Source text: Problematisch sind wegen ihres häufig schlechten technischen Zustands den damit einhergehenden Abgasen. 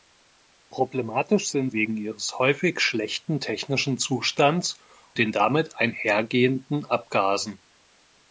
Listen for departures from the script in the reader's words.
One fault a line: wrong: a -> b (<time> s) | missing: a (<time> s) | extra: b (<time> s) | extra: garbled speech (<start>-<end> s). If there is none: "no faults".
no faults